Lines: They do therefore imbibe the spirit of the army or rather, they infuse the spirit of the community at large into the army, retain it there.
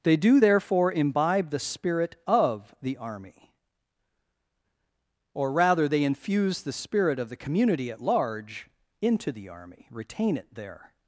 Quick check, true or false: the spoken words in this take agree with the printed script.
true